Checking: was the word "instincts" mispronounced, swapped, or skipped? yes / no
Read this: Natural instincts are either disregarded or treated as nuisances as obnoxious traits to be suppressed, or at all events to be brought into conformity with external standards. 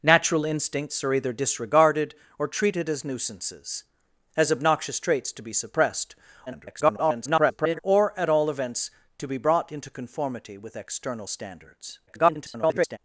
no